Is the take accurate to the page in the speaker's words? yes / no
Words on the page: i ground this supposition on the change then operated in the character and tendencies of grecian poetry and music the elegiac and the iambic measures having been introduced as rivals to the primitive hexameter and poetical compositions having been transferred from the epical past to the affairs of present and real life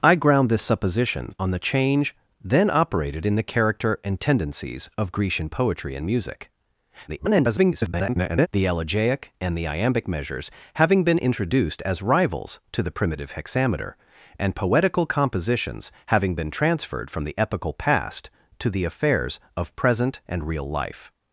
no